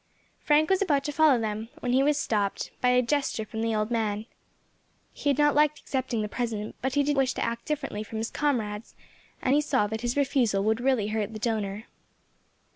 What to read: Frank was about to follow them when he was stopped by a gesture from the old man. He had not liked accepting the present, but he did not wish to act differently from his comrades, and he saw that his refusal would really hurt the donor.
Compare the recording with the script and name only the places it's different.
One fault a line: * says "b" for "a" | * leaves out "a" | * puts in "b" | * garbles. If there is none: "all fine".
* leaves out "not"